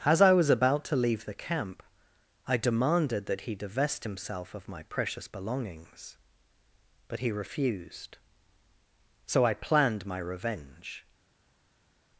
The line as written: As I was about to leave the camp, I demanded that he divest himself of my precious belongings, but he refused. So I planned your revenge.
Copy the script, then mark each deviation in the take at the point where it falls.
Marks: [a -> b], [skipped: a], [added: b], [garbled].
As I was about to leave the camp, I demanded that he divest himself of my precious belongings, but he refused. So I planned [your -> my] revenge.